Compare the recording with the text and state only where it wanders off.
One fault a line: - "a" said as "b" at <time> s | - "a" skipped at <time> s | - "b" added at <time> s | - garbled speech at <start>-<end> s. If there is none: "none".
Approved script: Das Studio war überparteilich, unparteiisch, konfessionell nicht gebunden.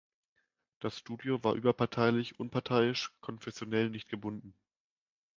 none